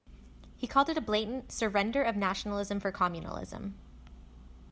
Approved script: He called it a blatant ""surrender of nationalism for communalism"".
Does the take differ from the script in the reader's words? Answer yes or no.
no